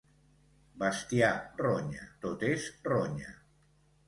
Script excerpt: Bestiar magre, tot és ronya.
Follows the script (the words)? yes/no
no